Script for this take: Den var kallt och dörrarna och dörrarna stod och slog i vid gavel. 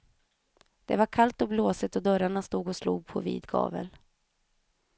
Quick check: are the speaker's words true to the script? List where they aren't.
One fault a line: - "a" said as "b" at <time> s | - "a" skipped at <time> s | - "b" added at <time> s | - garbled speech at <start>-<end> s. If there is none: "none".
- "Den" said as "Det" at 0.8 s
- "dörrarna" said as "blåsigt" at 1.5 s
- "i" said as "på" at 3.1 s